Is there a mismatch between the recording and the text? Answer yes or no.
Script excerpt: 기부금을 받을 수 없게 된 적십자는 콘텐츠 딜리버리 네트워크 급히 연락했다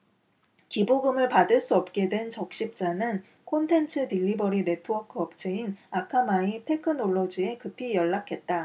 yes